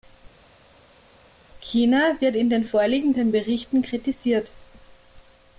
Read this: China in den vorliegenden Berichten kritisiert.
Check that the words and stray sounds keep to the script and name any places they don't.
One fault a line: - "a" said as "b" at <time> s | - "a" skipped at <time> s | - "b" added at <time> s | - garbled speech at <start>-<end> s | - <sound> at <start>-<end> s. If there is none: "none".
- "wird" added at 2.2 s